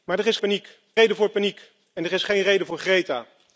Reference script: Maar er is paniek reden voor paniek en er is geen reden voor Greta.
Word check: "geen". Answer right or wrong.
right